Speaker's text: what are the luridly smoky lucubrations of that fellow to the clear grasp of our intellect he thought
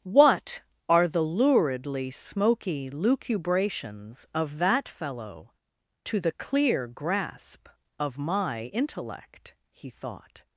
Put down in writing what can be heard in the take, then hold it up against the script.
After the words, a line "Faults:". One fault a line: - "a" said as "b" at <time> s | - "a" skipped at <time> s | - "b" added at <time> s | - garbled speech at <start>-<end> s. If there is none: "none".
what are the luridly smoky lucubrations of that fellow to the clear grasp of my intellect he thought
Faults:
- "our" said as "my" at 8.2 s